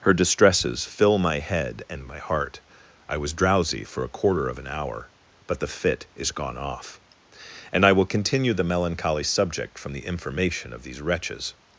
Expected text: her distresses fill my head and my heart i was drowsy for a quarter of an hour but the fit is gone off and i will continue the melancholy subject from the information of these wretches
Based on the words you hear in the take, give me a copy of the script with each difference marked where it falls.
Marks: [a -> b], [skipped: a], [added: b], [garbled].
her distresses fill my head and my heart i was drowsy for a quarter of an hour but the fit is gone off and i will continue the melancholy subject from the information of these wretches